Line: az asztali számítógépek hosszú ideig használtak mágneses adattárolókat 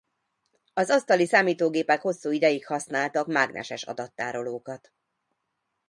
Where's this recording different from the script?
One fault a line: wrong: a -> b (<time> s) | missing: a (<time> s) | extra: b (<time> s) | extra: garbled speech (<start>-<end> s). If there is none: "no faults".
no faults